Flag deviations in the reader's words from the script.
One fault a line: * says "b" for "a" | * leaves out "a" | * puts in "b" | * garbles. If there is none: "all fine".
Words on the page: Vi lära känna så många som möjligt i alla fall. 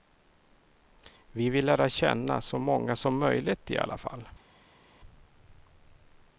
* puts in "vill"